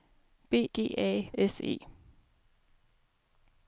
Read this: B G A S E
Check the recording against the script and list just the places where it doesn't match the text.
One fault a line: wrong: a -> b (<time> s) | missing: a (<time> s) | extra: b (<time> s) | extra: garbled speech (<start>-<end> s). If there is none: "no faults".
no faults